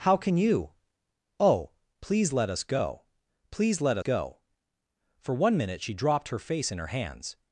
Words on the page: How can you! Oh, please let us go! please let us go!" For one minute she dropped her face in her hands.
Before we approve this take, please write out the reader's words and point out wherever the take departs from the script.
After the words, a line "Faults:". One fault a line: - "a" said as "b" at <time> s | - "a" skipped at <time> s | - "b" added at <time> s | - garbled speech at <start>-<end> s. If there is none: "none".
How can you! Oh, please let us go! please let go!" For one minute she dropped her face in her hands.
Faults:
- "us" skipped at 4.0 s